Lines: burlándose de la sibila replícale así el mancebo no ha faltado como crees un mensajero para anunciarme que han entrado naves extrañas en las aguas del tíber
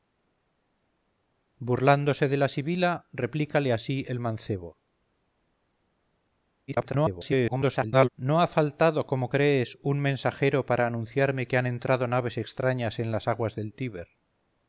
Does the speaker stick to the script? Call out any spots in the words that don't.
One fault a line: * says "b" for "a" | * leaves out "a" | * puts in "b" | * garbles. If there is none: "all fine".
* garbles